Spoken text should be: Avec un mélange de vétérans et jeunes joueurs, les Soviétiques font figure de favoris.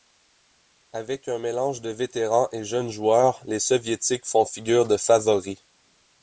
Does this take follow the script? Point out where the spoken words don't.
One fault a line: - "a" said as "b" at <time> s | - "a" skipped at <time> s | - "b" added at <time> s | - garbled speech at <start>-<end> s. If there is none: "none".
none